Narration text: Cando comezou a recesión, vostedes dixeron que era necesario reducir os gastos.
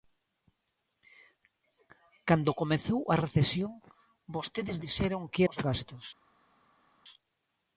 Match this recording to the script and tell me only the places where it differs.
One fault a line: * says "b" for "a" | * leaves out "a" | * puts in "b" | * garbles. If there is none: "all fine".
* leaves out "era necesario reducir"